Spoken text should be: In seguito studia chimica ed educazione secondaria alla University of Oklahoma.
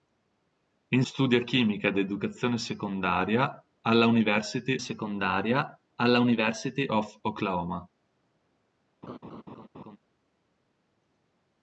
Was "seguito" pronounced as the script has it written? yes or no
no